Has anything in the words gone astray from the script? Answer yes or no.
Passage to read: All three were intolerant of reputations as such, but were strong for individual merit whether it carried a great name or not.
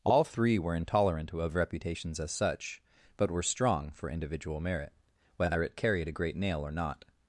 yes